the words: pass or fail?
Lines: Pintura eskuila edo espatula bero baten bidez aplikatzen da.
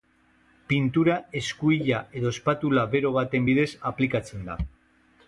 pass